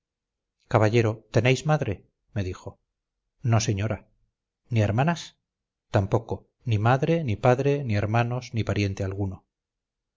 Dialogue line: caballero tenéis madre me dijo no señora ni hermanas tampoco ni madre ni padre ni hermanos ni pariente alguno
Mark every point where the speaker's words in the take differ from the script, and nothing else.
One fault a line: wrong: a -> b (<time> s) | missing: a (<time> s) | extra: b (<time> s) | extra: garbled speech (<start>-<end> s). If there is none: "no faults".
no faults